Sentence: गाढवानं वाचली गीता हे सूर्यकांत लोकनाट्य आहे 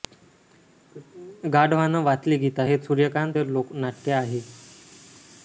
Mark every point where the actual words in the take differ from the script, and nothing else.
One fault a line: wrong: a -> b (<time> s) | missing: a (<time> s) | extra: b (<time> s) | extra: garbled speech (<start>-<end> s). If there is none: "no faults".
no faults